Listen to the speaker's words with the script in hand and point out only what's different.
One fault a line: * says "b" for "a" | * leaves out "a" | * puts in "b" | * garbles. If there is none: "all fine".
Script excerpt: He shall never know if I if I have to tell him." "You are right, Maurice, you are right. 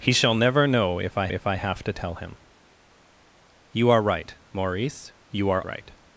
all fine